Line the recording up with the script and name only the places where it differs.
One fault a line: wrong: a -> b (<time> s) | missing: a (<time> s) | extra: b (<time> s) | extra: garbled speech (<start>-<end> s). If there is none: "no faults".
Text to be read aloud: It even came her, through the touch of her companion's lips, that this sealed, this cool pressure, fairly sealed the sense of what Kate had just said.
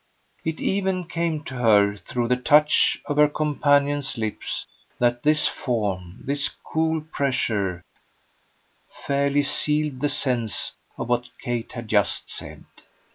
extra: to (1.4 s)
wrong: sealed -> form (5.5 s)